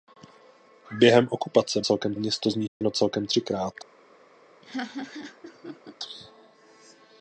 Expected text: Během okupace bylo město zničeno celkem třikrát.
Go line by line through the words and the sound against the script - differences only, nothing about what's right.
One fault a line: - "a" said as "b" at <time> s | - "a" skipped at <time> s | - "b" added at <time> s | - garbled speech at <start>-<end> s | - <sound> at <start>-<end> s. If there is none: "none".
- "bylo" said as "celkem" at 1.8 s
- dropout at 2.7-2.8 s
- laugh at 4.6-6.0 s